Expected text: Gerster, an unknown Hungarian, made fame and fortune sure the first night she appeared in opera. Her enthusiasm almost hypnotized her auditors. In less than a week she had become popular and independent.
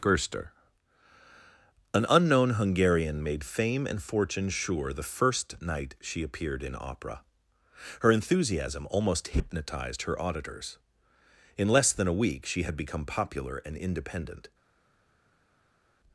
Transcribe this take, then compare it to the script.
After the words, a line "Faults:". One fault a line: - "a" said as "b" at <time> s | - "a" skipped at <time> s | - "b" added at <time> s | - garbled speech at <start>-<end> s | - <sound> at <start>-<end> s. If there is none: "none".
Gerster, an unknown Hungarian, made fame and fortune sure the first night she appeared in opera. Her enthusiasm almost hypnotized her auditors. In less than a week she had become popular and independent.
Faults:
none